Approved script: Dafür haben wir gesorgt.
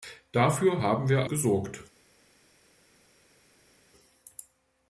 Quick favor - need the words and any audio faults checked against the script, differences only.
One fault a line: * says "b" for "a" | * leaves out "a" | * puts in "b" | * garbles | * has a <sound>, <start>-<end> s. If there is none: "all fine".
all fine